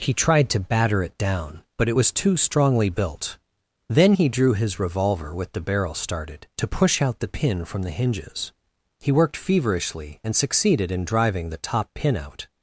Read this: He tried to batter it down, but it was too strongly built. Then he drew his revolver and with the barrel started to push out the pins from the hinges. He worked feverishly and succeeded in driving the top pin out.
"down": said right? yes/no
yes